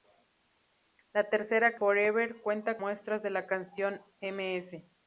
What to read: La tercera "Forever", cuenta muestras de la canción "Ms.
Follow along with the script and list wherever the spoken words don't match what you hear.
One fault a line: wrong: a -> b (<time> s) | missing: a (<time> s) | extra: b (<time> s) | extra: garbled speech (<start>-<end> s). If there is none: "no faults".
no faults